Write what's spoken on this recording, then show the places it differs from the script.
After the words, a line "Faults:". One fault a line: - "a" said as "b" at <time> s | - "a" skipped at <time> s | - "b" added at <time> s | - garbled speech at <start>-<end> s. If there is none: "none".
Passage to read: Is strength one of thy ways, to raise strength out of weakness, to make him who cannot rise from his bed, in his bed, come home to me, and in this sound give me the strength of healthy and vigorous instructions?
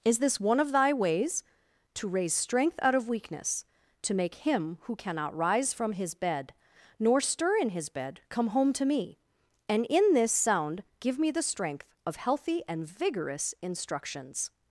Is this one of thy ways, to raise strength out of weakness, to make him who cannot rise from his bed, nor stir in his bed, come home to me, and in this sound give me the strength of healthy and vigorous instructions?
Faults:
- "strength" said as "this" at 0.2 s
- "nor stir" added at 7.0 s